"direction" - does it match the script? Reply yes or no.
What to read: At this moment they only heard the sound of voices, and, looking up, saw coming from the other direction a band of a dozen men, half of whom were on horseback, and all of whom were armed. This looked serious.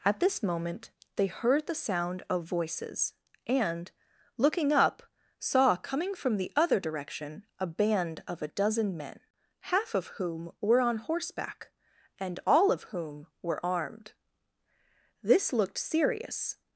yes